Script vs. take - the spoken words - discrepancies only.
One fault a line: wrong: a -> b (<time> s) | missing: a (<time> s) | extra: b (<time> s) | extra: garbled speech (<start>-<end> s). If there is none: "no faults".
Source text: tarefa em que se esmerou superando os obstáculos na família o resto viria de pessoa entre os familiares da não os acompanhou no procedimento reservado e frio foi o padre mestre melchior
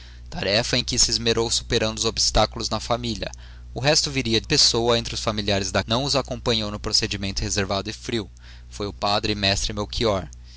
no faults